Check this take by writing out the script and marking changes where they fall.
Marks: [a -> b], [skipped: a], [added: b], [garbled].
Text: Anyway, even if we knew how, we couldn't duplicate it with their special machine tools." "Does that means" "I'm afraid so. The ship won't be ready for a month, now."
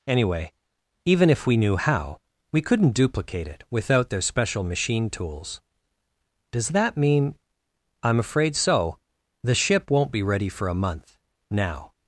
Anyway, even if we knew how, we couldn't duplicate it [with -> without] their special machine tools." "Does that [means" -> mean] "I'm afraid so. The ship won't be ready for a month, now."